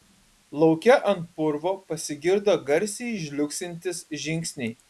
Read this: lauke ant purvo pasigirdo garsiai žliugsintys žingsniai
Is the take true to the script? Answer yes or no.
yes